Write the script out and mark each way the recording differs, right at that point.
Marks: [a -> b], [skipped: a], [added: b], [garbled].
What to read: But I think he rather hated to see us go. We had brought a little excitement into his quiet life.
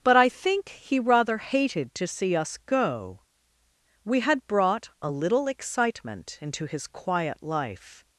But I think he rather hated to see us go. We had brought a little excitement into his quiet life.